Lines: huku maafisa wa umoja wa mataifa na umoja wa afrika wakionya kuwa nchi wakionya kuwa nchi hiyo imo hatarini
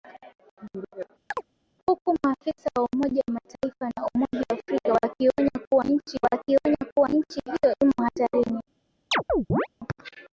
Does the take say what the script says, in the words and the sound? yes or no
no